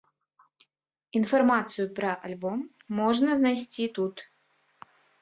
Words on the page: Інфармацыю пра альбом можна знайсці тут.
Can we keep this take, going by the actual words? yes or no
yes